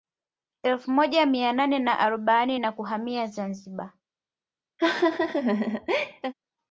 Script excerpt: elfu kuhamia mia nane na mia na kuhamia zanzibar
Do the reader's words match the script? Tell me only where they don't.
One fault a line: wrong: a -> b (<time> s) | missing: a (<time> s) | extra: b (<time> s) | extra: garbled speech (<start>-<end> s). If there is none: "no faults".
wrong: kuhamia -> moja (0.9 s)
wrong: mia -> arobaini (2.0 s)